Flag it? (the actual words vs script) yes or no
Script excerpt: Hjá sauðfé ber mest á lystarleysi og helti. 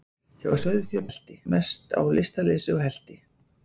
yes